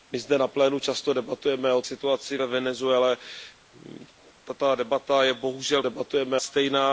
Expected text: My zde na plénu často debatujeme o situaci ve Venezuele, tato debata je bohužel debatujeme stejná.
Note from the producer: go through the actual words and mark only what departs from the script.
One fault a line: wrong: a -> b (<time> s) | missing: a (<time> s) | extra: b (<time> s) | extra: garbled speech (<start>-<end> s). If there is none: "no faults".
no faults